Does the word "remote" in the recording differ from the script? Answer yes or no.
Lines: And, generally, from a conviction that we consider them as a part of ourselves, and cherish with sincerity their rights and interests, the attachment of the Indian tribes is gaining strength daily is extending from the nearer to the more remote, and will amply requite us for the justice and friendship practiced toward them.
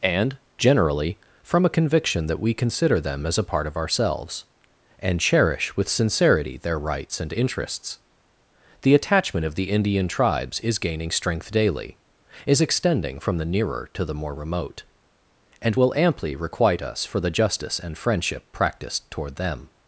no